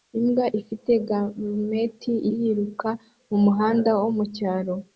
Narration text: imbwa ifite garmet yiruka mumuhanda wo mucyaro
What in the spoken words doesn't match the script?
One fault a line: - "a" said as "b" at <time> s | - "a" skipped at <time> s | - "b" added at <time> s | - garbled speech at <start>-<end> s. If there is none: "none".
none